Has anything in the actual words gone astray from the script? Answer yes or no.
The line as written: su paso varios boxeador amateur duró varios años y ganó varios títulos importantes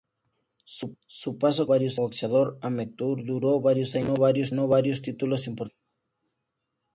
no